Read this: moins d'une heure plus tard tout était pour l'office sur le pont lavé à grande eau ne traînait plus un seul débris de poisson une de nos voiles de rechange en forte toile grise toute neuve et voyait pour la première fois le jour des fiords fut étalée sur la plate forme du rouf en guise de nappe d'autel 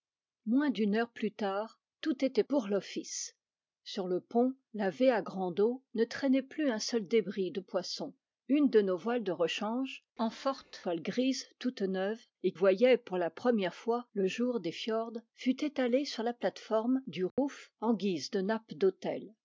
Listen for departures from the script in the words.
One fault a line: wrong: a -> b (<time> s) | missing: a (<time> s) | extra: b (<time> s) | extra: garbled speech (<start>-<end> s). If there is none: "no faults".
no faults